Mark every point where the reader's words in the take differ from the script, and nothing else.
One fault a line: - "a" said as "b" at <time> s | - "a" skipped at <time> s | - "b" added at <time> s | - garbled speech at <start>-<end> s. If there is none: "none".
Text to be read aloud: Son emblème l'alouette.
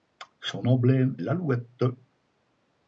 none